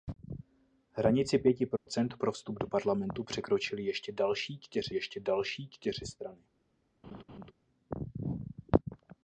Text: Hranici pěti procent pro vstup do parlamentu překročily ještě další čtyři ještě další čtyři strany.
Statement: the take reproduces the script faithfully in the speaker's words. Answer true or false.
true